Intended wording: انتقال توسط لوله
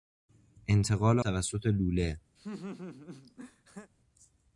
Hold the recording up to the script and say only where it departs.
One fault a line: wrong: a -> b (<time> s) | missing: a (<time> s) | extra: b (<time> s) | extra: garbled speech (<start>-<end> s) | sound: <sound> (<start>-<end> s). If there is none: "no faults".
sound: laugh (2.4-3.9 s)